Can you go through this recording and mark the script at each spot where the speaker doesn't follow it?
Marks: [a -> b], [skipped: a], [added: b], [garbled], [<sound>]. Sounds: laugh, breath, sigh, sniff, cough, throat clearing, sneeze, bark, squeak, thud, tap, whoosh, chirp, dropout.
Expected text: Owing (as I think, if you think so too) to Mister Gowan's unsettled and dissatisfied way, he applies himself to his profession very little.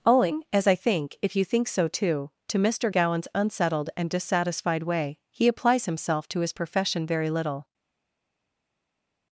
Owing (as I think, if you think so too) to Mister Gowan's unsettled and dissatisfied way, he applies himself to his profession very little.